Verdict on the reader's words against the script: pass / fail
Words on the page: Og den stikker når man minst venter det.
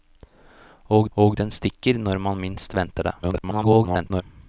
fail